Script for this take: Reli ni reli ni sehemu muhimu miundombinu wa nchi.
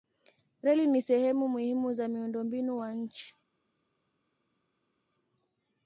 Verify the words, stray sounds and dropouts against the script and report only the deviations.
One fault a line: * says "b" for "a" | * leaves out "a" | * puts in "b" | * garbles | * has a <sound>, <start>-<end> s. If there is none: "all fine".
* leaves out "reli ni"
* puts in "za"